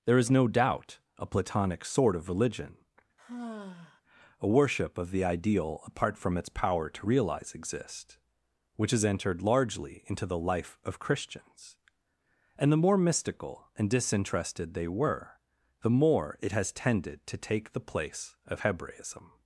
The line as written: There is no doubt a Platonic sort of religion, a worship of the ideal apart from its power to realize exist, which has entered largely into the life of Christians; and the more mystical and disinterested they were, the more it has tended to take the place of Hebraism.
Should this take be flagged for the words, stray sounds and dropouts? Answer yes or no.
yes